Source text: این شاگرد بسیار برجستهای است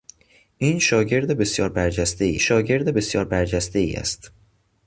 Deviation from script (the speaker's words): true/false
true